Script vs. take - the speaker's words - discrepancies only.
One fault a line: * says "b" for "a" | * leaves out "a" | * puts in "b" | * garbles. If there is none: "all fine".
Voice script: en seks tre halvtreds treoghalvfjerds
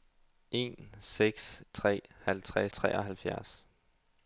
all fine